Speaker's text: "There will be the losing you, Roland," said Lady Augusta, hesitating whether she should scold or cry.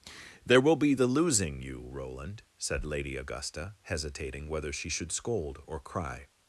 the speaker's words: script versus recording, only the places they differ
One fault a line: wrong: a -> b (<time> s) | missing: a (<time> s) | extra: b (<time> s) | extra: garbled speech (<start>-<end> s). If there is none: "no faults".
no faults